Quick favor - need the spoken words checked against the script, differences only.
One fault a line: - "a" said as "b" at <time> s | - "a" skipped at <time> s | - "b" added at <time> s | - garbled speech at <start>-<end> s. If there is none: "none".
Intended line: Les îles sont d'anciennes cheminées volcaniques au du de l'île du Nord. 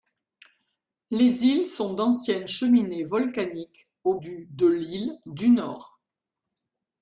none